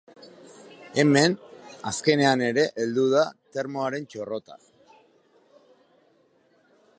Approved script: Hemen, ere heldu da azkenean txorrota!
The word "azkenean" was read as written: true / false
false